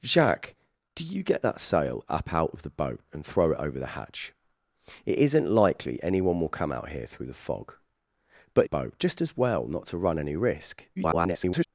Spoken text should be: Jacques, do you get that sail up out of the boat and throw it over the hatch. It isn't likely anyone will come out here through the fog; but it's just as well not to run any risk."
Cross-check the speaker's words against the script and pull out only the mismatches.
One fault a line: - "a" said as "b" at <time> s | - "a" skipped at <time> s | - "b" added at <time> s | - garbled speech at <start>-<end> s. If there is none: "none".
- "it's" said as "boat" at 8.6 s
- garbled speech at 11.0-11.7 s